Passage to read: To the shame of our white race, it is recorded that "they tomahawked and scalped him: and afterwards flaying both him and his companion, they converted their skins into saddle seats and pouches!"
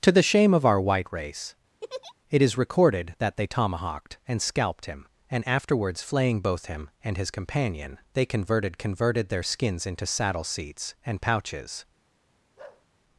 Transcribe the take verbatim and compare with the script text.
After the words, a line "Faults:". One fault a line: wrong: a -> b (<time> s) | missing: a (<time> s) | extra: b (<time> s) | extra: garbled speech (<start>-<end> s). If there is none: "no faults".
To the shame of our white race, it is recorded that "they tomahawked and scalped him: and afterwards flaying both him and his companion, they converted converted their skins into saddle seats and pouches!"
Faults:
extra: converted (8.8 s)